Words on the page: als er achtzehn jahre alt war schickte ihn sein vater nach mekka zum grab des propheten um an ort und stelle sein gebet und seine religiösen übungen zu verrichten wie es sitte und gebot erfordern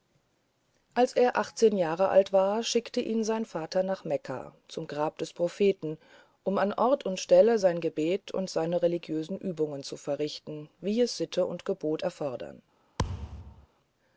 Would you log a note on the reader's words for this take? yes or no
no